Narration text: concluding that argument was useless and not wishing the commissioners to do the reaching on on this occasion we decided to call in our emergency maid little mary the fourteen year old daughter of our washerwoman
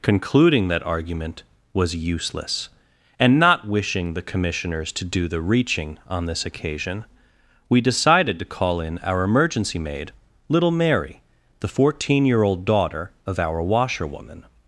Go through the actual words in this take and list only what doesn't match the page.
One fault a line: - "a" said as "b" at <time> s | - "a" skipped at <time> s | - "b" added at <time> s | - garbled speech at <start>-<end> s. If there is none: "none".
- "on" skipped at 6.2 s